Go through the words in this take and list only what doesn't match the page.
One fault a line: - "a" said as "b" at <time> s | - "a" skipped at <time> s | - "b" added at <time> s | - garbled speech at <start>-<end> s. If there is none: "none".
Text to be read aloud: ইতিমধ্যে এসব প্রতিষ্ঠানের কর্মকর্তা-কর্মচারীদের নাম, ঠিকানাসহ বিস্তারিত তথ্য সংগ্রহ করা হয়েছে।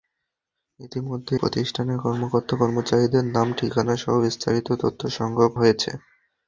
- "এসব" skipped at 1.3 s
- "করা" skipped at 5.5 s